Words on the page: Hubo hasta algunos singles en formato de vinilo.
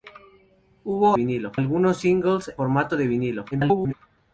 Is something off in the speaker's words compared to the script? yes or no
yes